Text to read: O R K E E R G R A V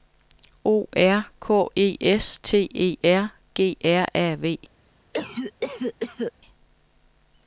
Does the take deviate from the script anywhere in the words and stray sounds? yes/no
yes